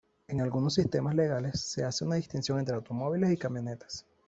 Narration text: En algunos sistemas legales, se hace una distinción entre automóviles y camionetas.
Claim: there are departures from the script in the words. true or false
false